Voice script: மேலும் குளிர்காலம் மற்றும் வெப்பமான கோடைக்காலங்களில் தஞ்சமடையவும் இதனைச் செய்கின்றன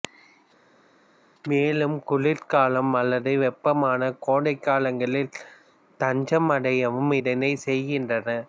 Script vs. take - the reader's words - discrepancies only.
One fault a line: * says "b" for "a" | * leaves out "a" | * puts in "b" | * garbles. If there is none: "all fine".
* says "அல்லது" for "மற்றும்"